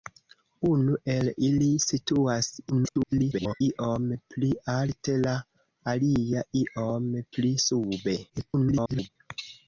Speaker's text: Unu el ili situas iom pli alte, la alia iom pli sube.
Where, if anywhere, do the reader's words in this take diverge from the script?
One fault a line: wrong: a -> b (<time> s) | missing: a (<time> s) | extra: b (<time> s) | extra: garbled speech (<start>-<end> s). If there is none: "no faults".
extra: garbled speech (2.7-3.6 s)
extra: garbled speech (8.3-9.1 s)